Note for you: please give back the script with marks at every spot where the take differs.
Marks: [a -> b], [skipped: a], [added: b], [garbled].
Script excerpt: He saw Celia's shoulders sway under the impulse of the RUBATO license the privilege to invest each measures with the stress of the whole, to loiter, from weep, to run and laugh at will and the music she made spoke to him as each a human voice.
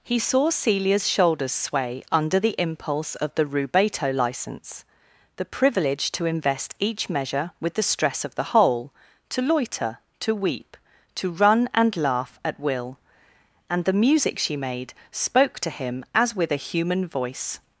He saw Celia's shoulders sway under the impulse of the RUBATO license the privilege to invest each [measures -> measure] with the stress of the whole, to loiter, [from -> to] weep, to run and laugh at will and the music she made spoke to him as [each -> with] a human voice.